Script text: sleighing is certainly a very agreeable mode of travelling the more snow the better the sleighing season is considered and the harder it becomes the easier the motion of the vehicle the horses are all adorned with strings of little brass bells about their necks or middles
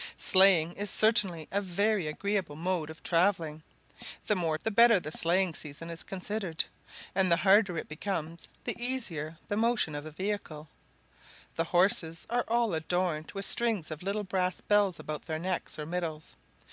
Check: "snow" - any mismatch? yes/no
yes